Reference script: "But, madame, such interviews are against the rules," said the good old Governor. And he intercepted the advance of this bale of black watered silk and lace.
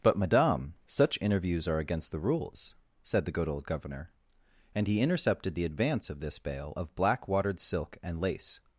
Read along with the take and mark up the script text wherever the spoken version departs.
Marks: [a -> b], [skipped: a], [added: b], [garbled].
"But, madame, such interviews are against the rules," said the good old Governor. And he intercepted the advance of this bale of black watered silk and lace.